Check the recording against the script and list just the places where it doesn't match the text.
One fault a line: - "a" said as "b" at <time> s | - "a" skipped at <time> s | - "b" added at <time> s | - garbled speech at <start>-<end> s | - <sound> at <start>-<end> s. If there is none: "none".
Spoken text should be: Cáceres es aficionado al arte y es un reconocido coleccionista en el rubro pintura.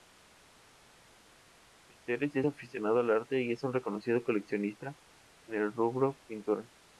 none